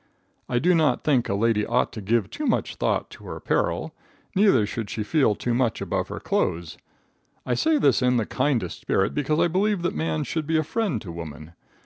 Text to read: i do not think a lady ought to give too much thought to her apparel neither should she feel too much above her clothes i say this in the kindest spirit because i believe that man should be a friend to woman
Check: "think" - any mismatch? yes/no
no